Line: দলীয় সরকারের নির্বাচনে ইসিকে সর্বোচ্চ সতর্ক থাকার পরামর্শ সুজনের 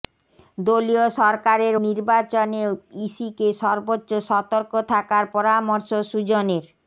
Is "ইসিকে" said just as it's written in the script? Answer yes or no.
yes